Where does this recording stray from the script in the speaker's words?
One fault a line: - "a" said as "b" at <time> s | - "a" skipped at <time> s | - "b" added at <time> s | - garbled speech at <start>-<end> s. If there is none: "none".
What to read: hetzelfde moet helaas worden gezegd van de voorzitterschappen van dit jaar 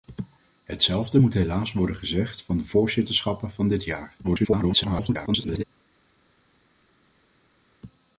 - garbled speech at 4.2-5.6 s